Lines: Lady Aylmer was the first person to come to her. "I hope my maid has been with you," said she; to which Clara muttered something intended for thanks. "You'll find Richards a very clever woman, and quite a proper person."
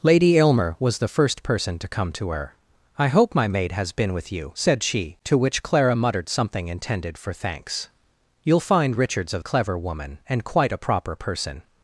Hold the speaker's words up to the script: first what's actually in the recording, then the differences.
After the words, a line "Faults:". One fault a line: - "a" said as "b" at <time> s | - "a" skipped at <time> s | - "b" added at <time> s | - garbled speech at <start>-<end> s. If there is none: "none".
Lady Aylmer was the first person to come to her. "I hope my maid has been with you," said she; to which Clara muttered something intended for thanks. "You'll find Richards a clever woman, and quite a proper person."
Faults:
- "very" skipped at 9.4 s